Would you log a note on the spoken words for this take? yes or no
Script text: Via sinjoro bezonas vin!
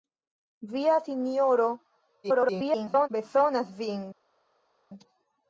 yes